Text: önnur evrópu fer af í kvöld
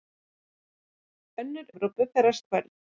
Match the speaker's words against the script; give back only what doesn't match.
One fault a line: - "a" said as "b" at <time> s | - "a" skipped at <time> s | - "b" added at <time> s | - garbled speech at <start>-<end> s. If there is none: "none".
none